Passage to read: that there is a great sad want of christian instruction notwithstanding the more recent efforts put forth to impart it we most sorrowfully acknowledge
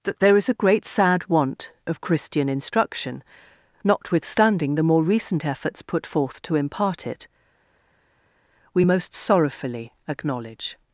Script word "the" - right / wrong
right